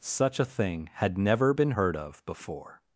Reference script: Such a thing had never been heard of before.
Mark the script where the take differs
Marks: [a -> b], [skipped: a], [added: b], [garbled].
Such a thing had never been heard of before.